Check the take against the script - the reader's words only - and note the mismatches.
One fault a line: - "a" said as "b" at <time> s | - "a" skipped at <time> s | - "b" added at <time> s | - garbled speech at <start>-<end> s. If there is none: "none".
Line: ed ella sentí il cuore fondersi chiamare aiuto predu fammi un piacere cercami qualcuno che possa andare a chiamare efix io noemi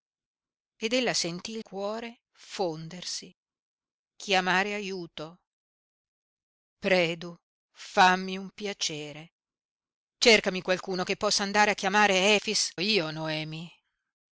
none